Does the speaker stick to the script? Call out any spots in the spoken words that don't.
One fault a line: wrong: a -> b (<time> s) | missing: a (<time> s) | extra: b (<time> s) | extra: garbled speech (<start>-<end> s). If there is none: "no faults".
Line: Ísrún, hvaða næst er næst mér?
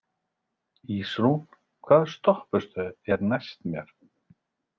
wrong: næst -> stoppistöð (2.1 s)